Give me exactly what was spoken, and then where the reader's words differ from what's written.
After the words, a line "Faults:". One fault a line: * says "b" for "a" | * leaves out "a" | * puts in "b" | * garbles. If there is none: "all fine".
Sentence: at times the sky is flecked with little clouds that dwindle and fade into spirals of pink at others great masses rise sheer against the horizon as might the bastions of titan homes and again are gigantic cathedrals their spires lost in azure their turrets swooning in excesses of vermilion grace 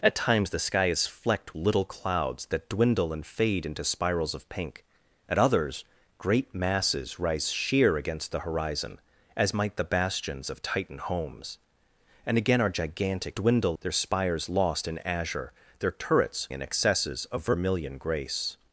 at times the sky is flecked little clouds that dwindle and fade into spirals of pink at others great masses rise sheer against the horizon as might the bastions of titan homes and again are gigantic dwindle their spires lost in azure their turrets in excesses of vermilion grace
Faults:
* leaves out "with"
* says "dwindle" for "cathedrals"
* leaves out "swooning"